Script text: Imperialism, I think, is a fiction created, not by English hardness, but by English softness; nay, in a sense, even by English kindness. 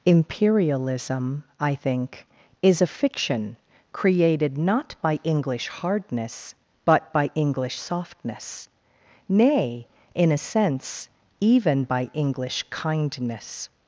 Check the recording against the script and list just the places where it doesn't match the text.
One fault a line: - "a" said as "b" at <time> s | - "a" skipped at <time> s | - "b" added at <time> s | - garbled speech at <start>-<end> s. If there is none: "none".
none